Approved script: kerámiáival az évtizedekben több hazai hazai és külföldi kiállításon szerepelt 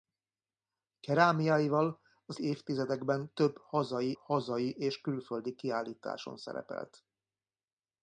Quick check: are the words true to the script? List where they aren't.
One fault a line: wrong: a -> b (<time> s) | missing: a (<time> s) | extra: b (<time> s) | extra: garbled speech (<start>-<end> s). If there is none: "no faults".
no faults